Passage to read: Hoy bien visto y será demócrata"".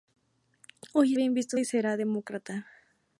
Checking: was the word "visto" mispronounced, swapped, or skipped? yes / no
no